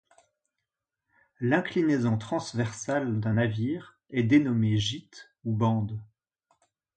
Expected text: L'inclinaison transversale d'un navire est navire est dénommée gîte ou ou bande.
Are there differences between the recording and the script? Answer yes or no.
yes